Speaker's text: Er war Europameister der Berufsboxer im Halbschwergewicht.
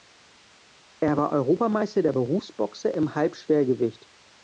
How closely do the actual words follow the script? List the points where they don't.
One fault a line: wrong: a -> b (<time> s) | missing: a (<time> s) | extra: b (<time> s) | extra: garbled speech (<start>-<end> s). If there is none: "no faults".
no faults